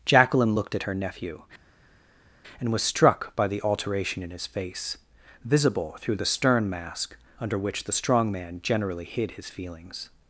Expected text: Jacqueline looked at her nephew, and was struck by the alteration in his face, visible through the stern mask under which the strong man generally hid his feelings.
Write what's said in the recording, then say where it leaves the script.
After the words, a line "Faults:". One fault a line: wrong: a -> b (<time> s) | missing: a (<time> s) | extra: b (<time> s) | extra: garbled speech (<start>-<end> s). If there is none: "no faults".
Jacqueline looked at her nephew, and was struck by the alteration in his face, visible through the stern mask under which the strong man generally hid his feelings.
Faults:
no faults